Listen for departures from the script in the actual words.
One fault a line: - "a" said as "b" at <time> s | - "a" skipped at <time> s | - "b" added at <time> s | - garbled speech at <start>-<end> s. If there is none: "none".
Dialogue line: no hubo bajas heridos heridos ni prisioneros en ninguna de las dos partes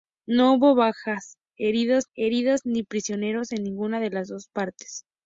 none